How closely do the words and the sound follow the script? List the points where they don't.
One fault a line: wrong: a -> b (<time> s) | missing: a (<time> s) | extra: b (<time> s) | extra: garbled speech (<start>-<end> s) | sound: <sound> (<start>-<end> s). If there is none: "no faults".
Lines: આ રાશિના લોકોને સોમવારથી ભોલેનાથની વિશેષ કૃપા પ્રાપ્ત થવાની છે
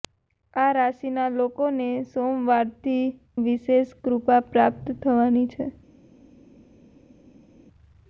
missing: ભોલેનાથની (3.0 s)